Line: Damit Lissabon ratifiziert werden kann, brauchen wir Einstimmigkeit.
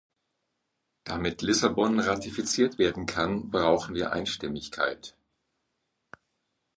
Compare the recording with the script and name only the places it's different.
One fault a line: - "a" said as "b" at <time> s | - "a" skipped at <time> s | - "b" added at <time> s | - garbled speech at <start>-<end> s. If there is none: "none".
none